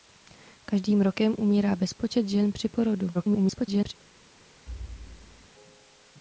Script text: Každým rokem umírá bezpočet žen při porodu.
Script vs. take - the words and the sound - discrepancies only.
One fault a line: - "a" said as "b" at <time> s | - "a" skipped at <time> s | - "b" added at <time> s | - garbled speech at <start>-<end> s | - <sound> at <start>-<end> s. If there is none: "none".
- garbled speech at 3.1-3.9 s
- thud at 4.7-5.5 s